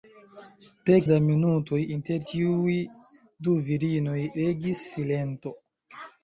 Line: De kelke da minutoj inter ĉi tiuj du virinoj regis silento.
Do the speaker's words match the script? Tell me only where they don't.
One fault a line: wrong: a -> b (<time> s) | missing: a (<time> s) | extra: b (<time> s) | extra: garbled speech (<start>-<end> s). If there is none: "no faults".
missing: kelke (0.9 s)
missing: ĉi (2.3 s)